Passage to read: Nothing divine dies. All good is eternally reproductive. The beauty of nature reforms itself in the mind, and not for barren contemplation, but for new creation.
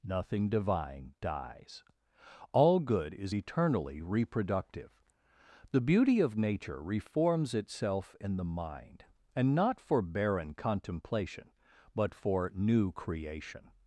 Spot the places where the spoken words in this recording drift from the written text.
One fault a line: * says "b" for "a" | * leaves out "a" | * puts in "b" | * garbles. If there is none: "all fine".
all fine